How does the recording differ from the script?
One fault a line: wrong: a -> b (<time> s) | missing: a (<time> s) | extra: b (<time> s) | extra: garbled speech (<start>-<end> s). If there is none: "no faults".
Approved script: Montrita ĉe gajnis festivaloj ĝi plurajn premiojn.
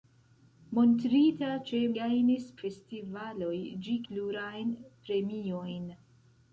no faults